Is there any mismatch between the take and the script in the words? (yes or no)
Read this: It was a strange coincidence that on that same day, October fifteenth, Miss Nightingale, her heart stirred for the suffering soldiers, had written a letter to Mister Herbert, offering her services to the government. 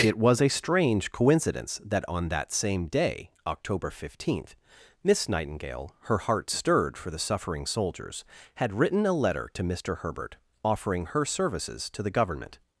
no